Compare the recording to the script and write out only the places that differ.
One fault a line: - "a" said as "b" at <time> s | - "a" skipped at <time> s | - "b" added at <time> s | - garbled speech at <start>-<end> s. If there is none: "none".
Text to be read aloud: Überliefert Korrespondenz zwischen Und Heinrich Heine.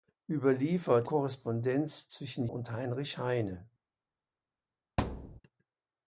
none